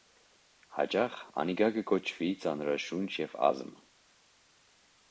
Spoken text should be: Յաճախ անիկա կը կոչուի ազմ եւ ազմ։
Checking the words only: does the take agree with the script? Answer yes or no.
no